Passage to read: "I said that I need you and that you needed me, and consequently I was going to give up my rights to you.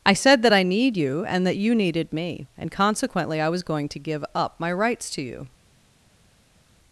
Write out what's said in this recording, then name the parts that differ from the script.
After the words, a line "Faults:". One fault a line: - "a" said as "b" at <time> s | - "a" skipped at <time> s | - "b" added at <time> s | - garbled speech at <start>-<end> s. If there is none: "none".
"I said that I need you and that you needed me, and consequently I was going to give up my rights to you.
Faults:
none